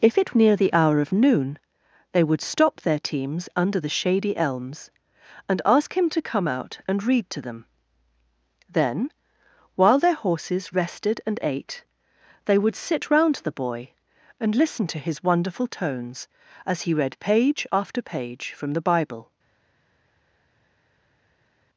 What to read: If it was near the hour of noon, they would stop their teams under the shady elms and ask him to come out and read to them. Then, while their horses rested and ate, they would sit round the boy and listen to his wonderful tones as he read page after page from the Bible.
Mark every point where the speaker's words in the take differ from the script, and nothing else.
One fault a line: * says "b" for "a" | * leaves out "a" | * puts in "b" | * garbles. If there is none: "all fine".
* leaves out "was"